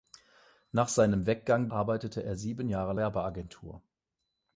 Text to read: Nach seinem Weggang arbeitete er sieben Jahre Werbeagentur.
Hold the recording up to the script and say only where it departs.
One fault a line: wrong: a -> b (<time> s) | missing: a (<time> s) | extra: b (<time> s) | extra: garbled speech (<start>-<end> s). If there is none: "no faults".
no faults